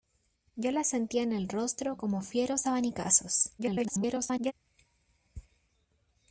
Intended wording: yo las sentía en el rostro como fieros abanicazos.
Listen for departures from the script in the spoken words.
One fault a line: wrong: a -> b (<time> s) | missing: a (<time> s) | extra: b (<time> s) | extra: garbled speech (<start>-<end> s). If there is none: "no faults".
extra: garbled speech (3.6-4.5 s)